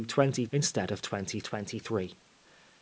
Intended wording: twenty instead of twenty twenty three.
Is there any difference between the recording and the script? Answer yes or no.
no